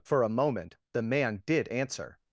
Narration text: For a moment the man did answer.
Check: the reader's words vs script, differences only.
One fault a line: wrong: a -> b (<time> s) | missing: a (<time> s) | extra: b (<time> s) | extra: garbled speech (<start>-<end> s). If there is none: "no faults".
no faults